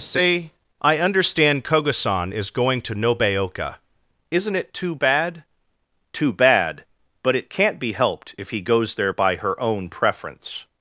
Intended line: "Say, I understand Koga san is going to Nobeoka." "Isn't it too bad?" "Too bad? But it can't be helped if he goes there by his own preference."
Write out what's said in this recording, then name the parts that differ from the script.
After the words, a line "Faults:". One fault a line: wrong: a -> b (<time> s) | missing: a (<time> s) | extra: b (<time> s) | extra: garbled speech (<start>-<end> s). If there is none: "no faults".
"Say, I understand Koga san is going to Nobeoka." "Isn't it too bad?" "Too bad? But it can't be helped if he goes there by her own preference."
Faults:
wrong: his -> her (9.4 s)